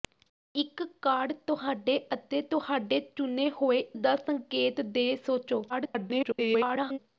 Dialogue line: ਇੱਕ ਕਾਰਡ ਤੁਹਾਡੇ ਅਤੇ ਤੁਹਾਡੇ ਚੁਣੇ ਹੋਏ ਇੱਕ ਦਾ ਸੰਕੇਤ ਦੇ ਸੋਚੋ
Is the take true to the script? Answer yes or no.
no